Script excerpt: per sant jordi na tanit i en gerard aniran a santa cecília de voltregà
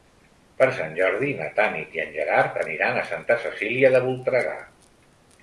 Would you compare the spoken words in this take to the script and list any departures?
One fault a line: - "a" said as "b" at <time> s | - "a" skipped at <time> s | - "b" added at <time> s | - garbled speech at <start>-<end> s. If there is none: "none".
none